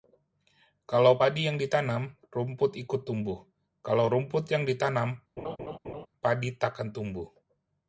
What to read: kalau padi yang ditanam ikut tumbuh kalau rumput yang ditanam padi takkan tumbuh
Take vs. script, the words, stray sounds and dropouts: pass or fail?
fail